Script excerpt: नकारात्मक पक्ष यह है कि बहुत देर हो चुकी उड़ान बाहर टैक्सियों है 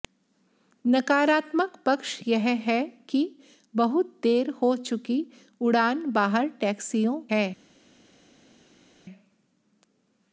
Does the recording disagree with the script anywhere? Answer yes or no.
no